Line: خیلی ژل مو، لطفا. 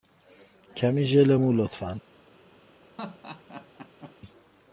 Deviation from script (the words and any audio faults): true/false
true